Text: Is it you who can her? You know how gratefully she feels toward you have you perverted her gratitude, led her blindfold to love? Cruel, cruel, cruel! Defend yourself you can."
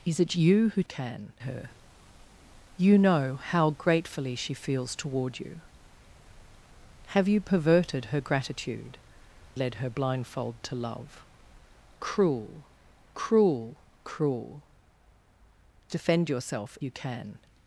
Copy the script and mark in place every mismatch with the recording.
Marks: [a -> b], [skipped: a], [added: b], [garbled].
Is it you who can her? You know how gratefully she feels toward you have you perverted her gratitude, led her blindfold to love? Cruel, cruel, cruel! Defend yourself you can."